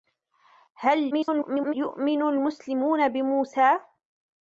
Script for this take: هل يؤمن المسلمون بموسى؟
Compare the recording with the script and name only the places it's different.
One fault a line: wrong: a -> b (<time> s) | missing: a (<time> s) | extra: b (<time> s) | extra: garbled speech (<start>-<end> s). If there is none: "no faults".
extra: garbled speech (1.1-1.7 s)